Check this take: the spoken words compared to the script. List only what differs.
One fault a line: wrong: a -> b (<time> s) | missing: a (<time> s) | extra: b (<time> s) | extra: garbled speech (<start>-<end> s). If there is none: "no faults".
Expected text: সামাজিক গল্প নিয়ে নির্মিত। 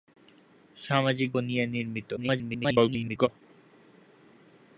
missing: গল্প (1.3 s)
extra: garbled speech (2.2-3.3 s)